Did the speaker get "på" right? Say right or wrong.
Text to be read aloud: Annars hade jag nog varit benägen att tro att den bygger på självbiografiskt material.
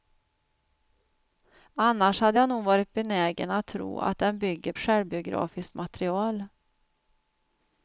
wrong